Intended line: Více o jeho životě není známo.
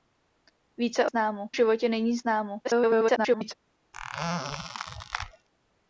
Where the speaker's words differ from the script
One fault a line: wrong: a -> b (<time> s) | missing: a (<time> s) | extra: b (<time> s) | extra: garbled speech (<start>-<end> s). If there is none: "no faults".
wrong: jeho -> známo (1.0 s)
extra: garbled speech (2.6-3.5 s)